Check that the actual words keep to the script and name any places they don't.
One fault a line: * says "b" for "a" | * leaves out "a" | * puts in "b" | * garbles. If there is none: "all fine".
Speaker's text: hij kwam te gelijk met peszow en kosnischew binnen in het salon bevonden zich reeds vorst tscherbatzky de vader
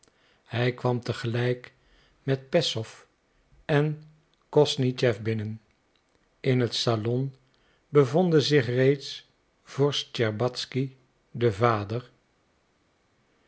all fine